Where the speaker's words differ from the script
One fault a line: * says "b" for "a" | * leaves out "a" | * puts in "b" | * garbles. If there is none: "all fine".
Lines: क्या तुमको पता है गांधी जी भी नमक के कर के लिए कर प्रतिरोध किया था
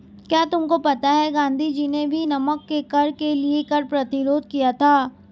* puts in "ने"